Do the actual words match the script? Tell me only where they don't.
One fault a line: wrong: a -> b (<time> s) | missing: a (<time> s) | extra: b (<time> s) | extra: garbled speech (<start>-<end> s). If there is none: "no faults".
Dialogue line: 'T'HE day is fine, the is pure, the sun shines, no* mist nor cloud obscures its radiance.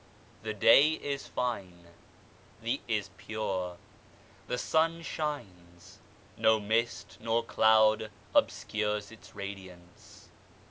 no faults